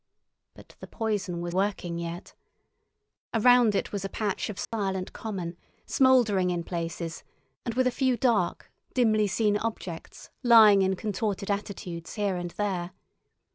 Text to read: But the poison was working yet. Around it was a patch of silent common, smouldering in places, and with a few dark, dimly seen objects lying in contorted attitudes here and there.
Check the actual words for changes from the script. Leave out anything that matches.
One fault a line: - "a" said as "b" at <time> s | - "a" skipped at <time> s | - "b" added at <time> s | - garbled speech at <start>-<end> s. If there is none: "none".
none